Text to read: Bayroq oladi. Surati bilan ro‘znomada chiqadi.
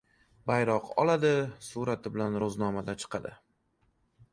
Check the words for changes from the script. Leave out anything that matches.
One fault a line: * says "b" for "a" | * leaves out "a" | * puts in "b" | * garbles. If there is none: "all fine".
all fine